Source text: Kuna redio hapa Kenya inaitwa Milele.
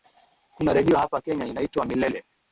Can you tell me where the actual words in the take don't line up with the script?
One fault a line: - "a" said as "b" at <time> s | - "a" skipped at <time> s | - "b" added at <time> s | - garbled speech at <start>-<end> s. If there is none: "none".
none